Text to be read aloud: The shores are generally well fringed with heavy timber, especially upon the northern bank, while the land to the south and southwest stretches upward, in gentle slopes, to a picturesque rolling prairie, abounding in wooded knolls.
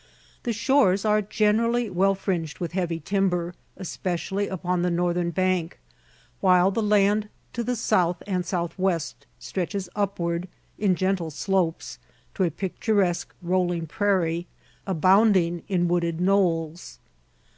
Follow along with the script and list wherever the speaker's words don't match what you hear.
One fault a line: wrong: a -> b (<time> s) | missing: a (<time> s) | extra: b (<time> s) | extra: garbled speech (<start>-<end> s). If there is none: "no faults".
no faults